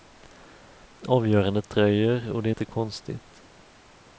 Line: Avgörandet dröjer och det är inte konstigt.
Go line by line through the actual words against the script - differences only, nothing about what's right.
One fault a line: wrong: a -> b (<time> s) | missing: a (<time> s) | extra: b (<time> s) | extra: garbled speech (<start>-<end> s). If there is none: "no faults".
no faults